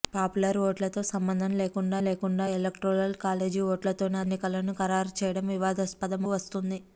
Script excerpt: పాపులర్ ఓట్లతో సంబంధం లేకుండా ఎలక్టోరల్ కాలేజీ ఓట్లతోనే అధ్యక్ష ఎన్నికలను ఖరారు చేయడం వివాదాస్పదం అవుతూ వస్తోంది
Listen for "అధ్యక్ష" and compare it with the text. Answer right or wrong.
wrong